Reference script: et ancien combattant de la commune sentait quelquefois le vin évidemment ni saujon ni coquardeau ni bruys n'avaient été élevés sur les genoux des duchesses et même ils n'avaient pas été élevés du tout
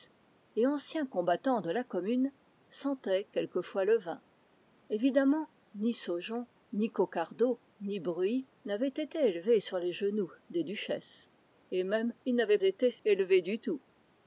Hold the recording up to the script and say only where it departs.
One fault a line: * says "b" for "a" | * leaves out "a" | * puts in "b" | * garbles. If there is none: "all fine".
* leaves out "pas"